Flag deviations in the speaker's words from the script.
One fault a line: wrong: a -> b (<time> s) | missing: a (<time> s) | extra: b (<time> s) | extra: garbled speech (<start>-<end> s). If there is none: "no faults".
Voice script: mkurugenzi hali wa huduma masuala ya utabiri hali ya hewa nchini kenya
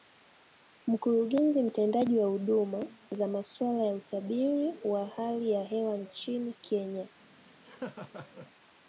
wrong: hali -> mtendaji (1.6 s)
extra: za (3.1 s)
extra: wa (4.8 s)